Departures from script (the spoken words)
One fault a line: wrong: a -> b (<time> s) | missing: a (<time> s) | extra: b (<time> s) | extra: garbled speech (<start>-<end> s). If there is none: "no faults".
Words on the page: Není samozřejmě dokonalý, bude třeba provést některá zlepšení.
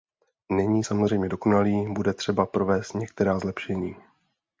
no faults